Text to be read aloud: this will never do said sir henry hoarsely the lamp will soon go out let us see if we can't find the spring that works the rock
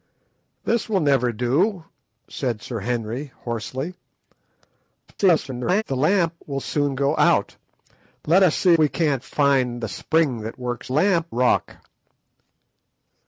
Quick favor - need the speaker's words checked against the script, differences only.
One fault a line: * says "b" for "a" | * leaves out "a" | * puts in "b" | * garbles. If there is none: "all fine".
* garbles
* leaves out "if"
* says "lamp" for "the"